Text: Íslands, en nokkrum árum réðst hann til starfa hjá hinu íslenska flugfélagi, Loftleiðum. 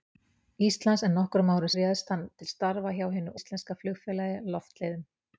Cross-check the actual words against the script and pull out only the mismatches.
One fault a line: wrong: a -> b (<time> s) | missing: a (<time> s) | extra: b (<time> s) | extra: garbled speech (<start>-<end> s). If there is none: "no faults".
no faults